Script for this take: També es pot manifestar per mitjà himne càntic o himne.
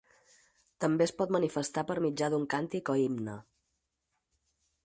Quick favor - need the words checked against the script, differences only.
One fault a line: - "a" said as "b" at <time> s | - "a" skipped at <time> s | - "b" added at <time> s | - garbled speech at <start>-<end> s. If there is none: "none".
- "himne" said as "d'un" at 2.4 s